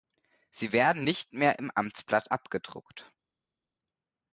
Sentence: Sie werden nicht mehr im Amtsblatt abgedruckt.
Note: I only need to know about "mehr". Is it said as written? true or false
true